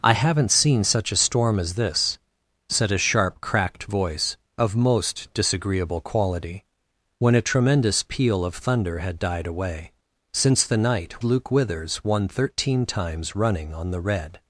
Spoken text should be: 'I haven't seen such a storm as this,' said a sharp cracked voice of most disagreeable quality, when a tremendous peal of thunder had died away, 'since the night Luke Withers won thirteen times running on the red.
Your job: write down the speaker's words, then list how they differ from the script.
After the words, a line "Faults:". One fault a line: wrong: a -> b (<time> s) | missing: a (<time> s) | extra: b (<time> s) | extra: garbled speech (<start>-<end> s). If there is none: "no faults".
'I haven't seen such a storm as this,' said a sharp cracked voice of most disagreeable quality, when a tremendous peal of thunder had died away, 'since the night Luke Withers won thirteen times running on the red.
Faults:
no faults